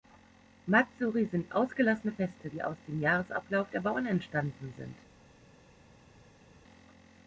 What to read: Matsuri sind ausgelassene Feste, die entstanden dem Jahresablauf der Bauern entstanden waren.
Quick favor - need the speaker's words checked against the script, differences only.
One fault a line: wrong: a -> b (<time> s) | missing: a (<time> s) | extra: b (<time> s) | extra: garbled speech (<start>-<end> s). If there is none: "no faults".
wrong: entstanden -> aus (2.6 s)
wrong: waren -> sind (4.8 s)